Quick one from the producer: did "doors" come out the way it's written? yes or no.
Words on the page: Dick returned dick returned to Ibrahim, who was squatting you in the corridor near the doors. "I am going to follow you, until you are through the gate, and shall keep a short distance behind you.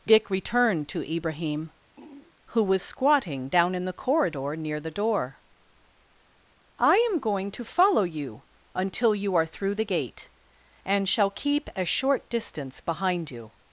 no